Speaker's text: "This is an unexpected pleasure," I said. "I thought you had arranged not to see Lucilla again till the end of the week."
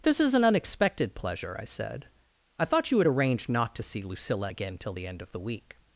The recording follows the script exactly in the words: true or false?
true